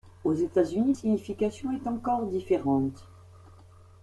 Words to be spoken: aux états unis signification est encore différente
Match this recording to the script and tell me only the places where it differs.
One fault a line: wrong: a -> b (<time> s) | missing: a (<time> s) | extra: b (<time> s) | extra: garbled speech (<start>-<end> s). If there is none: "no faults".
no faults